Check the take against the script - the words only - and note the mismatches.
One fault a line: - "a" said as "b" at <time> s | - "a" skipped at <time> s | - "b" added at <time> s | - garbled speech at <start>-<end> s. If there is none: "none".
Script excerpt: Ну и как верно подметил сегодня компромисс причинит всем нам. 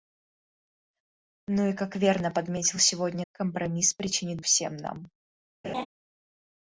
none